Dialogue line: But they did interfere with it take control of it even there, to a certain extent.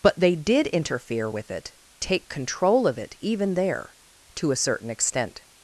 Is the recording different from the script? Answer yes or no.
no